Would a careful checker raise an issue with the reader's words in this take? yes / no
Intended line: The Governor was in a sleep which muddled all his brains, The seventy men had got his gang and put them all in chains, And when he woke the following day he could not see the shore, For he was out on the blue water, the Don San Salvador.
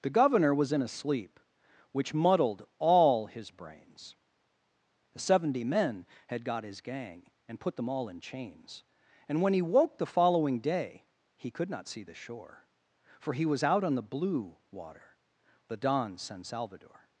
no